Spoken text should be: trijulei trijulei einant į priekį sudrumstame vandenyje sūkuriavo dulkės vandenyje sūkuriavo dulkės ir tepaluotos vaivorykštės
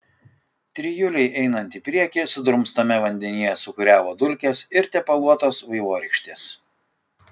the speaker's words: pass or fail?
fail